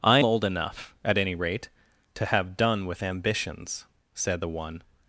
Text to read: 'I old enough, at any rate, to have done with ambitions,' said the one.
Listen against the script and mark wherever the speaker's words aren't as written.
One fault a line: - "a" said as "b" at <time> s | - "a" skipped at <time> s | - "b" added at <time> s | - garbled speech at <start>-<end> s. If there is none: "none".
none